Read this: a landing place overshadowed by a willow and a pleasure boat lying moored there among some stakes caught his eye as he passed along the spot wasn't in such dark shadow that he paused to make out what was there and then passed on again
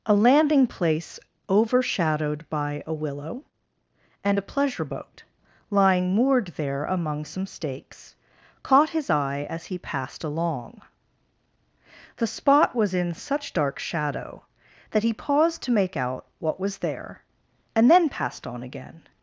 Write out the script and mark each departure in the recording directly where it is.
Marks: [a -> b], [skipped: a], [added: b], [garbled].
a landing place overshadowed by a willow and a pleasure boat lying moored there among some stakes caught his eye as he passed along the spot [wasn't -> was] in such dark shadow that he paused to make out what was there and then passed on again